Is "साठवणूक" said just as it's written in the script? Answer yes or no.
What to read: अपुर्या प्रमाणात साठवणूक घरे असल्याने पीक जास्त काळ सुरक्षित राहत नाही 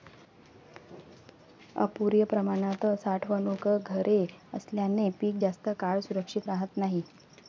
yes